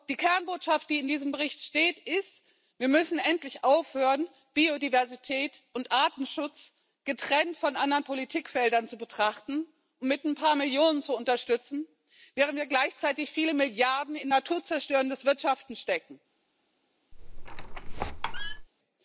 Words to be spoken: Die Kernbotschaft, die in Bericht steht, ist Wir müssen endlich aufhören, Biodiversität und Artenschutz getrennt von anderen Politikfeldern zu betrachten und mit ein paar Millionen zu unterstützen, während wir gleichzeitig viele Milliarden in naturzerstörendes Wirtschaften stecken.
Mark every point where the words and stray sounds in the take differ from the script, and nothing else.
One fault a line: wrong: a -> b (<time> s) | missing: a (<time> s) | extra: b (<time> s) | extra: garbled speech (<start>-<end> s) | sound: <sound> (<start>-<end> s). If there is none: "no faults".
extra: diesem (1.1 s)
sound: squeak (17.1-18.7 s)